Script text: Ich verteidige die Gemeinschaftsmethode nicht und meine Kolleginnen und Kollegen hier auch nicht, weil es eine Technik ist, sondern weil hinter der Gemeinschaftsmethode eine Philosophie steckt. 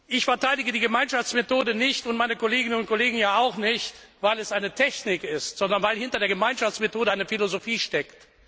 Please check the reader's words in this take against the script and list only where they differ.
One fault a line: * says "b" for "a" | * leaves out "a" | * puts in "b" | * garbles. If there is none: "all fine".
all fine